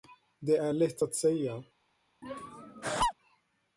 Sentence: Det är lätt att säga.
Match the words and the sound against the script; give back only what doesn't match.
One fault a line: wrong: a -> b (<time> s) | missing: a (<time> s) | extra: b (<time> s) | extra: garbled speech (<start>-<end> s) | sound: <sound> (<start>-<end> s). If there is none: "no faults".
sound: laugh (2.2-3.1 s)